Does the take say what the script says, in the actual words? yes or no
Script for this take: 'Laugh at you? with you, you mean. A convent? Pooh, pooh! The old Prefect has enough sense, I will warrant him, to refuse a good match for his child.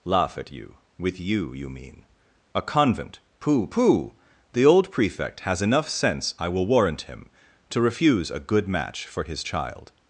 yes